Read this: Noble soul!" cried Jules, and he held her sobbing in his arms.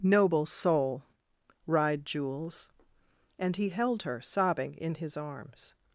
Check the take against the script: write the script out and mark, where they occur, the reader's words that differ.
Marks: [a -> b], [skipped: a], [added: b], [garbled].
Noble soul!" cried Jules, and he held her sobbing in his arms.